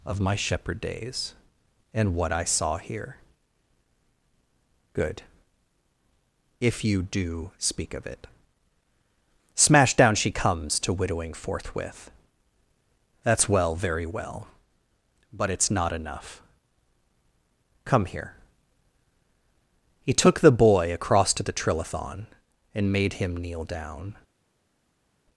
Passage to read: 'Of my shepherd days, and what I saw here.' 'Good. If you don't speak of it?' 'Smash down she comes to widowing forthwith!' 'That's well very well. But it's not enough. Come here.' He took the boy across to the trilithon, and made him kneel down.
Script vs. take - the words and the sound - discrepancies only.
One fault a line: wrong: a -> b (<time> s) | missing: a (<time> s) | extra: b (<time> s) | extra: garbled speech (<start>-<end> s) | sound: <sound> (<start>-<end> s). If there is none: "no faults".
wrong: don't -> do (7.0 s)